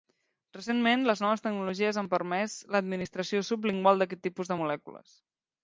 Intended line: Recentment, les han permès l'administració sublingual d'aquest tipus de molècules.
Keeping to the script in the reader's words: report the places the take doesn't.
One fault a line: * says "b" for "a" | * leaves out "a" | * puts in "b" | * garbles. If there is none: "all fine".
* puts in "noves tecnologies"